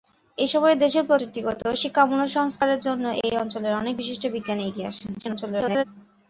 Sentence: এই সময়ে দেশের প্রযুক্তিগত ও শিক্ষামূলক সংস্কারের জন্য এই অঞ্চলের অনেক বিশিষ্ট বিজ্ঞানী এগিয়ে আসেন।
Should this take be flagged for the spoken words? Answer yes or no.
yes